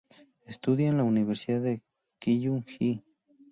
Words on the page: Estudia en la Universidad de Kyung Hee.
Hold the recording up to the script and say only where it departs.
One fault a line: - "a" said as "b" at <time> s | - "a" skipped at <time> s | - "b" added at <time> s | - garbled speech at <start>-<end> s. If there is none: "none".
none